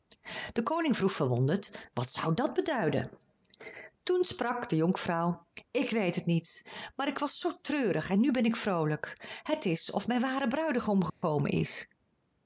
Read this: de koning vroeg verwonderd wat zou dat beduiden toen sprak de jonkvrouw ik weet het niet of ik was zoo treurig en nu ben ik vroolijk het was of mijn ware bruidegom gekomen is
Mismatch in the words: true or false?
true